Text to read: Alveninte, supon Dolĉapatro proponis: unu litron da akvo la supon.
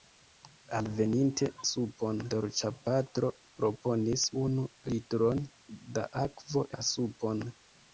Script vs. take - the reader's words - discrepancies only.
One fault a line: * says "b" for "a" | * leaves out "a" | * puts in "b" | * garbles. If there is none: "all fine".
all fine